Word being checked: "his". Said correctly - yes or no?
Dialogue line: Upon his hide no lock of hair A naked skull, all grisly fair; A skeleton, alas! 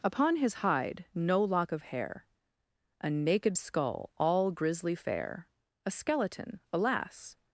yes